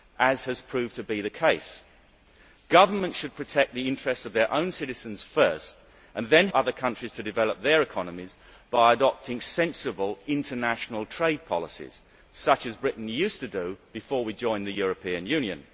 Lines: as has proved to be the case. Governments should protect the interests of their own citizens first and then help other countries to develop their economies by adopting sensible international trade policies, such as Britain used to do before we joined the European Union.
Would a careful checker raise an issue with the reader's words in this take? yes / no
yes